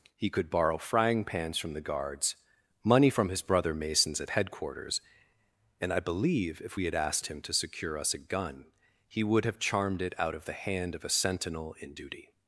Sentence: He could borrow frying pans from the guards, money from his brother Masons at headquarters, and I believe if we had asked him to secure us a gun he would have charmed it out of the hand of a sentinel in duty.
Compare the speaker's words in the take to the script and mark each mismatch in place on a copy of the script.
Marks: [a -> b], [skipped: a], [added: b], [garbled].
He could borrow frying pans from the guards, money from his brother Masons at headquarters, and I believe if we had asked him to secure us a gun he would have charmed it out of the hand of a sentinel in duty.